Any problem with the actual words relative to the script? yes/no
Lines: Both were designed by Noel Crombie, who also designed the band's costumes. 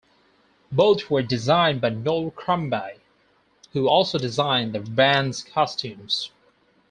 no